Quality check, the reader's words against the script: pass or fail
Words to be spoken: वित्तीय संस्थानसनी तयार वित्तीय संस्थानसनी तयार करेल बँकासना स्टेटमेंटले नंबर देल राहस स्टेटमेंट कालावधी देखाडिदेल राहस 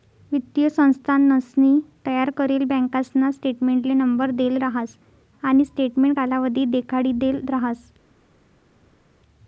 fail